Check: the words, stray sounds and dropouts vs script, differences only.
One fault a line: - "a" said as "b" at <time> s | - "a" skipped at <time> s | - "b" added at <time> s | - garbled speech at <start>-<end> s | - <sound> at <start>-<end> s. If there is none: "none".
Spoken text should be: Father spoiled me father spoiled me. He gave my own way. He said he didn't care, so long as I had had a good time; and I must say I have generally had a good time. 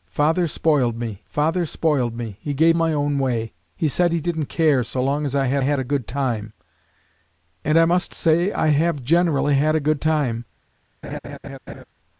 - laugh at 11.0-11.8 s